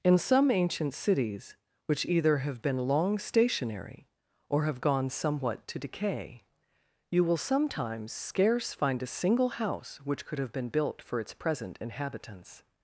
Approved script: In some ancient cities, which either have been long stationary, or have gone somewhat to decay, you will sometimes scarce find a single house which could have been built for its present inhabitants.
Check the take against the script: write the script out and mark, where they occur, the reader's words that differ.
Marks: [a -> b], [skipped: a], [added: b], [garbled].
In some ancient cities, which either have been long stationary, or have gone somewhat to decay, you will sometimes scarce find a single house which could have been built for its present inhabitants.